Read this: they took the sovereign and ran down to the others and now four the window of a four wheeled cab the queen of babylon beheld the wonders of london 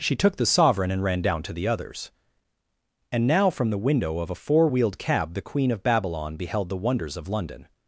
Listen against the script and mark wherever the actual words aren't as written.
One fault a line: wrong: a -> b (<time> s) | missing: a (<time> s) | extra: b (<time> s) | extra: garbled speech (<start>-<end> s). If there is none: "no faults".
wrong: they -> she (0.0 s)
wrong: four -> from (3.5 s)